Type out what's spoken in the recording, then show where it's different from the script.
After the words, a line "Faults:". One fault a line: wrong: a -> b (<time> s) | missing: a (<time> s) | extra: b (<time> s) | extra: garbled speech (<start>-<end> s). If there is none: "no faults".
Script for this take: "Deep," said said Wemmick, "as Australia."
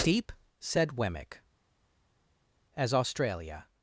"Deep," said Wemmick, "as Australia."
Faults:
missing: said (0.9 s)